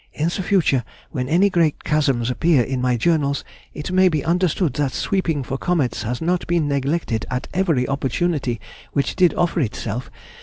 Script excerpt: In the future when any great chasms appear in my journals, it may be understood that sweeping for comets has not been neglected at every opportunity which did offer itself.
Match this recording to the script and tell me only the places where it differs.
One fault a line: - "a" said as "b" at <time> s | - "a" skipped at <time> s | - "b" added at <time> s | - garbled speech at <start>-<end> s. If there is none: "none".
none